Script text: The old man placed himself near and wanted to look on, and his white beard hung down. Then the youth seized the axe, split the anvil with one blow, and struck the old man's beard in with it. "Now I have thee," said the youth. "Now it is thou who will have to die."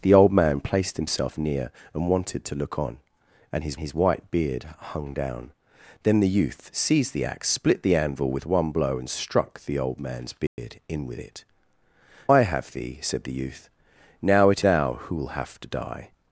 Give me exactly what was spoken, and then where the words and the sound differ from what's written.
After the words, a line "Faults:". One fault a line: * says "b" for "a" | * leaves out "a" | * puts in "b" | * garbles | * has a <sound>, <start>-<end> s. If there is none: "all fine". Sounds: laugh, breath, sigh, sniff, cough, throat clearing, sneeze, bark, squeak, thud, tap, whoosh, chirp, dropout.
The old man placed himself near and wanted to look on, and his his white beard hung down. Then the youth seized the axe, split the anvil with one blow, and struck the old man's beard in with it. "I have thee," said the youth. "Now it thou who will have to die."
Faults:
* puts in "his"
* has a dropout, 10.5-10.6 s
* leaves out "Now"
* leaves out "is"